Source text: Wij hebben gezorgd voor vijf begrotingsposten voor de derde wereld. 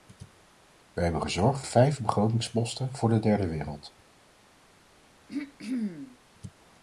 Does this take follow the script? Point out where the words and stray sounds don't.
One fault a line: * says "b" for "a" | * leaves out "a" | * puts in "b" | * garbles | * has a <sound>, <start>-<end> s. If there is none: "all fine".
* leaves out "voor"
* has a throat clearing, 5.3-6.2 s